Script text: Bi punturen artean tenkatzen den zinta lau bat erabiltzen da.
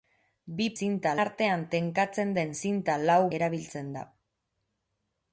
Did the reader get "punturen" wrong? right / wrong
wrong